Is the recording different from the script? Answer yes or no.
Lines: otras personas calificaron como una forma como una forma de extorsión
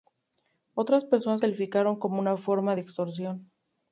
yes